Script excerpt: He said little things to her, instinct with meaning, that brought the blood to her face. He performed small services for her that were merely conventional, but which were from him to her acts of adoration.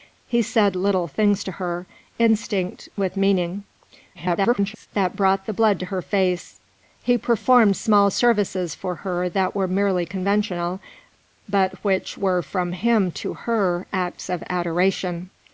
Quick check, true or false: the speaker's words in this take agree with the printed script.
false